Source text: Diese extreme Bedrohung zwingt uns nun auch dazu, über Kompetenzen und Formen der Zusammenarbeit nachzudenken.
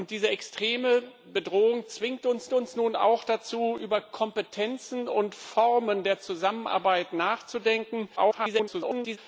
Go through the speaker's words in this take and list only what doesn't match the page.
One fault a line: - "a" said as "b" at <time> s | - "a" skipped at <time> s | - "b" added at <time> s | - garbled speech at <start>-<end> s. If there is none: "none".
- "uns" added at 2.5 s
- garbled speech at 8.2-9.2 s